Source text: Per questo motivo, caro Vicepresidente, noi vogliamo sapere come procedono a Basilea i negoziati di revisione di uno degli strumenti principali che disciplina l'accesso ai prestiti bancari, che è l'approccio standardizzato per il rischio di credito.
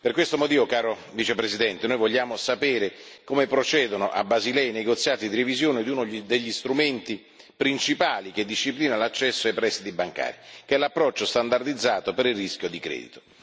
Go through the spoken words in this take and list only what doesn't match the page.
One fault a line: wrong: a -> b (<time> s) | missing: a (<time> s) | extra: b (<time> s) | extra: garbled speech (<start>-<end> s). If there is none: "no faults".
no faults